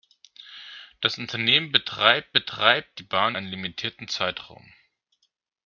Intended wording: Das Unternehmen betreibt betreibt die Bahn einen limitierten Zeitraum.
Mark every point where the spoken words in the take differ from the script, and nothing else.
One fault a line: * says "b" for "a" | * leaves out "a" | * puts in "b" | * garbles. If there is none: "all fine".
all fine